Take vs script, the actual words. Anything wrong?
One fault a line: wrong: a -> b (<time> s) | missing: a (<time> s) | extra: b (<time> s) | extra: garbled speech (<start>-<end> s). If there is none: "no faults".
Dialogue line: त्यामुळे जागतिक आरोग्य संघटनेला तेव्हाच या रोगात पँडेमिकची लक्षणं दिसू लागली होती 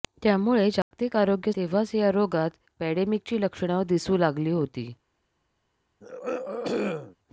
missing: संघटनेला (1.5 s)